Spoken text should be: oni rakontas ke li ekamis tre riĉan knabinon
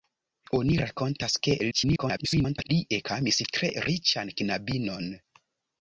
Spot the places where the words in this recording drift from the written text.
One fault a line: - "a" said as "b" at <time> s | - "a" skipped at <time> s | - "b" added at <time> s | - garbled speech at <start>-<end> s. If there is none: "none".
- garbled speech at 1.7-2.7 s